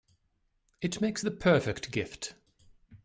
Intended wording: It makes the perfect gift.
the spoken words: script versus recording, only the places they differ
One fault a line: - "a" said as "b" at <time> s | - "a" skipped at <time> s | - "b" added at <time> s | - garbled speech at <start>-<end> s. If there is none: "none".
none